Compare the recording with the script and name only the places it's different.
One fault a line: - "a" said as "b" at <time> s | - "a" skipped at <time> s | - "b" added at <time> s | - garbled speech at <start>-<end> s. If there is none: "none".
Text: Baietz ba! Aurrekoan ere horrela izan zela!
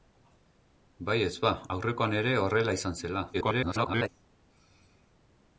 - garbled speech at 3.3-4.1 s